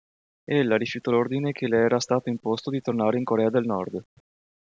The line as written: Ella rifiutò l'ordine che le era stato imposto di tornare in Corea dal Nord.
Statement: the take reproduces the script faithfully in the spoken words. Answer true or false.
false